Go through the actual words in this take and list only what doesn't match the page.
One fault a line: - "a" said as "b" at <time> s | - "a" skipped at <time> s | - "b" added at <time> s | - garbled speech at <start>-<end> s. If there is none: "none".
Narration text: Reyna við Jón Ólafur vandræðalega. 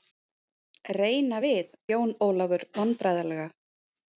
none